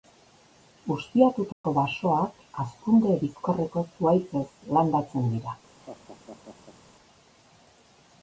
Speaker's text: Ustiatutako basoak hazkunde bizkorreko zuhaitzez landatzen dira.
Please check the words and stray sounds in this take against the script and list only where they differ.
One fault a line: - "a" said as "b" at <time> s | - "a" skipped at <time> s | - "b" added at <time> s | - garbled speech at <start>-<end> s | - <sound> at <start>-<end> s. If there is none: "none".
- dropout at 1.5-1.6 s
- laugh at 5.8-6.8 s